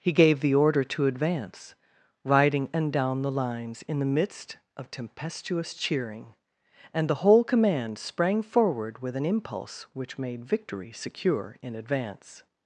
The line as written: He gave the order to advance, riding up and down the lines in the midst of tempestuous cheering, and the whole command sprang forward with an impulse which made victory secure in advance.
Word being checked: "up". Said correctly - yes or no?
no